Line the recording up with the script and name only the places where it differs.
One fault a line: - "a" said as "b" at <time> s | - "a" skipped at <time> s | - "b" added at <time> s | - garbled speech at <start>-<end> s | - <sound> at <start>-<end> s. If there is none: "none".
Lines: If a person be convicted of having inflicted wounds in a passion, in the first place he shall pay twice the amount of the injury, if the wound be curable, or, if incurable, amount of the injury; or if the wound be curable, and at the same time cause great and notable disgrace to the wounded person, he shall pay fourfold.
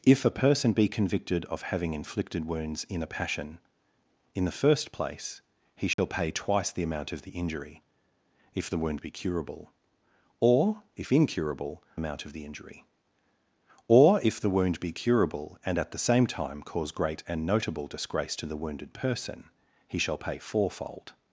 - dropout at 5.9-6.0 s